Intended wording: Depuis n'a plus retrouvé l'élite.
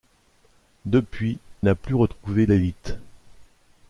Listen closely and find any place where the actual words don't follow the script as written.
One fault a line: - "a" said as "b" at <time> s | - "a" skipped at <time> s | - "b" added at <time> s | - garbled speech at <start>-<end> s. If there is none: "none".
none